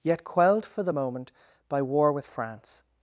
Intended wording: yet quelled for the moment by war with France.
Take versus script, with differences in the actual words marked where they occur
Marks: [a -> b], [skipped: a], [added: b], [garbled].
yet quelled for the moment by war with France.